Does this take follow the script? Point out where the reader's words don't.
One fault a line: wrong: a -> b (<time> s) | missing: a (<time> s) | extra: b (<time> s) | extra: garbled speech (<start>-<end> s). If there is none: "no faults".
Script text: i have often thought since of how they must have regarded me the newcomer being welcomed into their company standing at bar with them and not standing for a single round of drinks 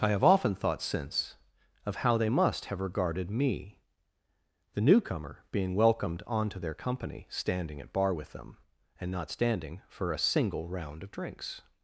wrong: into -> onto (6.3 s)